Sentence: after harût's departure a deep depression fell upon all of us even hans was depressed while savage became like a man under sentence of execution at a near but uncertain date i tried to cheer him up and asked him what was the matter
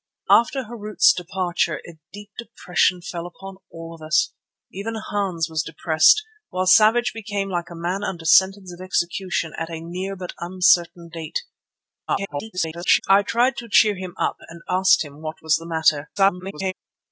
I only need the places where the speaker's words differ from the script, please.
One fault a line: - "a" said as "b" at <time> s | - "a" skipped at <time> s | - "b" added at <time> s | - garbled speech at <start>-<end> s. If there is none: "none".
- garbled speech at 12.1-13.0 s
- garbled speech at 16.2-16.7 s